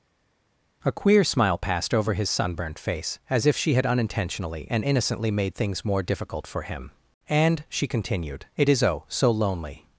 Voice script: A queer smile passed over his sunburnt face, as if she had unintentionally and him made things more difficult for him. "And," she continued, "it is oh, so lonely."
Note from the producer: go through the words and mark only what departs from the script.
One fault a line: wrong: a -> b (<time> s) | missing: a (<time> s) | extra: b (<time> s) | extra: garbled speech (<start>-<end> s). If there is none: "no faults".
wrong: him -> innocently (4.8 s)